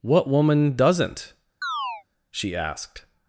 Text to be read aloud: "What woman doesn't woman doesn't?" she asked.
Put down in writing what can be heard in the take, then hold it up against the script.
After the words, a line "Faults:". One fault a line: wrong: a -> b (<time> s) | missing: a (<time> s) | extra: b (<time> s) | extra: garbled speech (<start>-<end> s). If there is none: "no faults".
"What woman doesn't?" she asked.
Faults:
missing: woman doesn't (1.3 s)